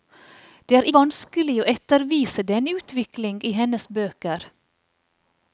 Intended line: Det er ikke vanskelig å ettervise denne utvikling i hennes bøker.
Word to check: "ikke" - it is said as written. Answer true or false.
false